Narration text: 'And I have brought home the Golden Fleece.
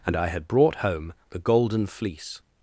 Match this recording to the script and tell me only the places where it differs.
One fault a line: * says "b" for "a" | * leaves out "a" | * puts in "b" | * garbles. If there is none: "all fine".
* says "had" for "have"